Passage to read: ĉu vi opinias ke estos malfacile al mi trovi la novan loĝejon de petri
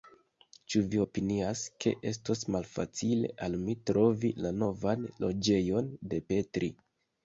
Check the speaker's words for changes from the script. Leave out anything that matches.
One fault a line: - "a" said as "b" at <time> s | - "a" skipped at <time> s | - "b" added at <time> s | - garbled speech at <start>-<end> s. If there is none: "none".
none